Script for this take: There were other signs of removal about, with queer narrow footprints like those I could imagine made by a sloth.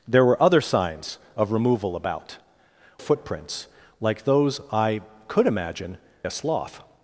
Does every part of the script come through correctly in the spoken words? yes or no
no